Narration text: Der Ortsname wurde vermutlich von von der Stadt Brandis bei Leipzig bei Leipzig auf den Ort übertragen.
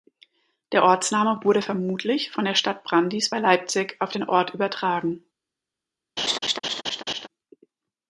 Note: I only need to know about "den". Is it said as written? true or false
true